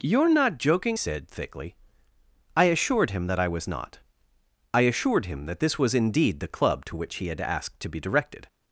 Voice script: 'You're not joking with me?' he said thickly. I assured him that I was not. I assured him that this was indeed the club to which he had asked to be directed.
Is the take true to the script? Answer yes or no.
no